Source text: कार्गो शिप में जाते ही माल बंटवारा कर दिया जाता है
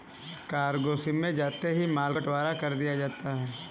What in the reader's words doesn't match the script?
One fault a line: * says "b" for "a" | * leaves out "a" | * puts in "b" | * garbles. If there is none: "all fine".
all fine